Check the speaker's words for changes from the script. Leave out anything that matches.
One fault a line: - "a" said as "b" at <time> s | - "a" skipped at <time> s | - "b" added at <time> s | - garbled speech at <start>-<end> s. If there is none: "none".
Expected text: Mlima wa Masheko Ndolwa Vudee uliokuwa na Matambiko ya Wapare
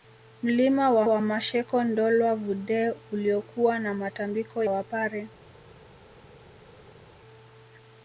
- "wa" added at 1.0 s
- "ya" skipped at 4.6 s